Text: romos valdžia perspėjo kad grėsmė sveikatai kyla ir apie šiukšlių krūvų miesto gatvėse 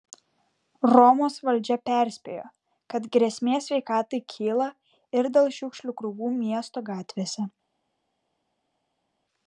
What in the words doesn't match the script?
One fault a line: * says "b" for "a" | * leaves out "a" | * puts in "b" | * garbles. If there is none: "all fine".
* says "dėl" for "apie"